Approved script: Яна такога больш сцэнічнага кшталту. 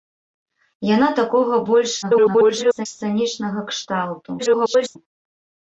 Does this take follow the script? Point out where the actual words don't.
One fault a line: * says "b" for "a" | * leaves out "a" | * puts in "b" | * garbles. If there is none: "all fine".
* garbles
* garbles